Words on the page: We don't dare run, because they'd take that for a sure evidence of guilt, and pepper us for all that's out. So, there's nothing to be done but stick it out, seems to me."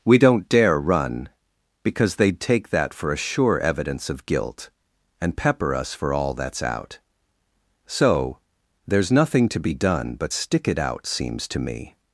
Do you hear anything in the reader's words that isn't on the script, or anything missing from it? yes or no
no